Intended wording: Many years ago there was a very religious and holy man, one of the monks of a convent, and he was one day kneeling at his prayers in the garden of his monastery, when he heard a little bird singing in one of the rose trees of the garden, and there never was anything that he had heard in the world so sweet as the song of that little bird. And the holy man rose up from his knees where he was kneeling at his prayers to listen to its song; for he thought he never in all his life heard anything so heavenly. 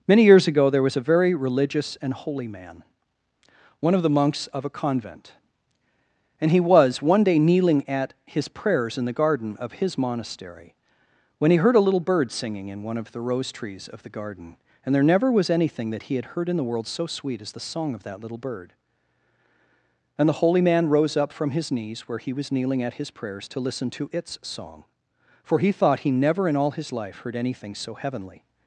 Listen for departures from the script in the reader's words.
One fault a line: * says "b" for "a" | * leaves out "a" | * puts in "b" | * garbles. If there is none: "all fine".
all fine